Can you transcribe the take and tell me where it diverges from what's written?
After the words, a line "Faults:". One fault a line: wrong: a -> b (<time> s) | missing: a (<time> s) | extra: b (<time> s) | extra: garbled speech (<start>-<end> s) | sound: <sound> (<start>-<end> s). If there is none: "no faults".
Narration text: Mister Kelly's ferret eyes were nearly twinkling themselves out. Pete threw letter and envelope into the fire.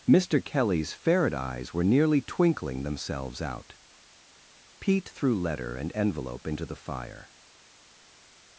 Mister Kelly's ferret eyes were nearly twinkling themselves out. Pete threw letter and envelope into the fire.
Faults:
no faults